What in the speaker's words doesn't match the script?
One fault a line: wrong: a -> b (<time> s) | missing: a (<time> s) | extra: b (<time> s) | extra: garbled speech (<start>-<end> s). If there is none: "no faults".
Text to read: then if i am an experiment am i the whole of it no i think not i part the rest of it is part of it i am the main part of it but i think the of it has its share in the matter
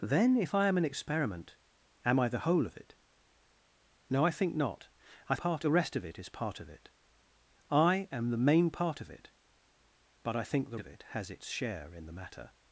no faults